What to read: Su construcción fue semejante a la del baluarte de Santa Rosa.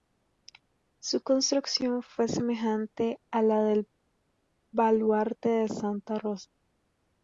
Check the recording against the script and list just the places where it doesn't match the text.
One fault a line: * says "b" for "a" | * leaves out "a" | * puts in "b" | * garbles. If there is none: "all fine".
all fine